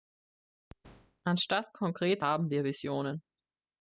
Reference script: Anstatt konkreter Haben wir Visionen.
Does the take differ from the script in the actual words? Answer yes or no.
no